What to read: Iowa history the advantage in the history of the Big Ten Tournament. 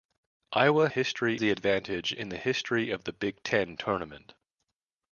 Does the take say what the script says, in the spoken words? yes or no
yes